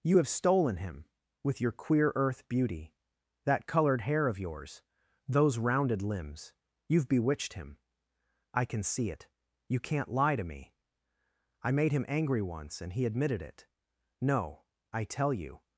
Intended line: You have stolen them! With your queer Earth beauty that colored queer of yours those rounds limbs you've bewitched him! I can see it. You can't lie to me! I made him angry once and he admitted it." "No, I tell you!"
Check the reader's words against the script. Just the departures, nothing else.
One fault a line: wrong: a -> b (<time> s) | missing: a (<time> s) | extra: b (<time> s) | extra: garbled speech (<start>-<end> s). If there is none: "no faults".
wrong: them -> him (0.8 s)
wrong: queer -> hair (4.0 s)
wrong: rounds -> rounded (5.6 s)